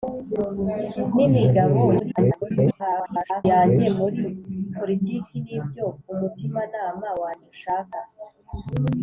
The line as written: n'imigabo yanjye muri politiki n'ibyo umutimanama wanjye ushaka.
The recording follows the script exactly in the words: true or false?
false